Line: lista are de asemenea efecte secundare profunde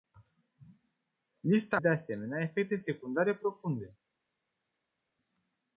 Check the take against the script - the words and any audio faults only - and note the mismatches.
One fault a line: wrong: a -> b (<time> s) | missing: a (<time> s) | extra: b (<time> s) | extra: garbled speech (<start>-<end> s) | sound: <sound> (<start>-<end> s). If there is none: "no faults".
missing: are (1.8 s)